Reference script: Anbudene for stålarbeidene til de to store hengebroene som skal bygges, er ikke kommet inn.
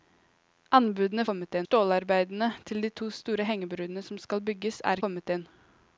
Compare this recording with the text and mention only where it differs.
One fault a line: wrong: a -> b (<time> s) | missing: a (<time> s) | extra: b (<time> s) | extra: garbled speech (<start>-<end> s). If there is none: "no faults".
wrong: for -> kommet (1.3 s)
missing: ikke (5.1 s)